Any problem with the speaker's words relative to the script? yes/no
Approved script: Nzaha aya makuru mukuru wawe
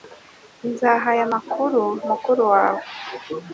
no